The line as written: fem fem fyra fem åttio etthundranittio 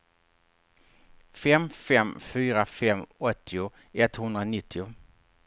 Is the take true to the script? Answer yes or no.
yes